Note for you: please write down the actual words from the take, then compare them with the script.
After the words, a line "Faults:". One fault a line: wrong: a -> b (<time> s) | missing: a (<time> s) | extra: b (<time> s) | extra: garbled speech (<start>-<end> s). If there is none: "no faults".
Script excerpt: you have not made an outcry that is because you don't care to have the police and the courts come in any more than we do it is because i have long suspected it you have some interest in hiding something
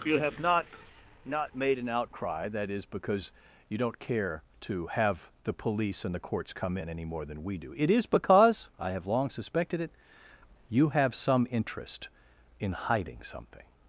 you have not not made an outcry that is because you don't care to have the police and the courts come in any more than we do it is because i have long suspected it you have some interest in hiding something
Faults:
extra: not (1.2 s)